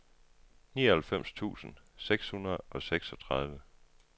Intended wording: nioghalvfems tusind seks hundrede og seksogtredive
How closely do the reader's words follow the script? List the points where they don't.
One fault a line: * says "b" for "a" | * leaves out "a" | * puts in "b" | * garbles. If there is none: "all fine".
all fine